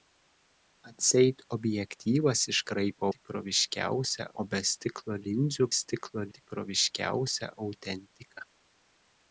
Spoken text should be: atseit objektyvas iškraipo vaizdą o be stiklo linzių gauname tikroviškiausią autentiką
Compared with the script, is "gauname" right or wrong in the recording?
wrong